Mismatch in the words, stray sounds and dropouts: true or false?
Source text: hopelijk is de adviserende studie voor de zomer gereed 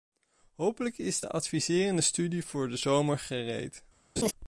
true